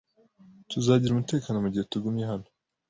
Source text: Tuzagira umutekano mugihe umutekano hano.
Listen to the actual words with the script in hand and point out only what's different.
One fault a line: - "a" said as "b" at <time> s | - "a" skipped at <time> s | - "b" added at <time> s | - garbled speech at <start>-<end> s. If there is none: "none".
- "umutekano" said as "tugumye" at 1.9 s